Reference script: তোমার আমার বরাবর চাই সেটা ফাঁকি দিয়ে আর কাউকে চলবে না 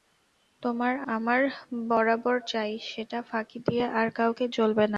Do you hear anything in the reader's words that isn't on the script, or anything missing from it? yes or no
no